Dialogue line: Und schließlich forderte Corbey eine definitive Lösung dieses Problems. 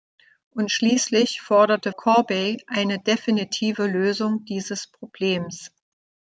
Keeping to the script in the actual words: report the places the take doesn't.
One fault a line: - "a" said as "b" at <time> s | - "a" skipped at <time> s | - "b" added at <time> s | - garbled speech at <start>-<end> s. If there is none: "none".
none